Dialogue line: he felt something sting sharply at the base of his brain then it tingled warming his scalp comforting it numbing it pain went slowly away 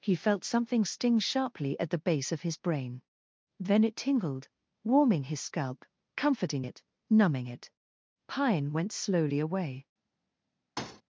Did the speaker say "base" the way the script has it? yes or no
yes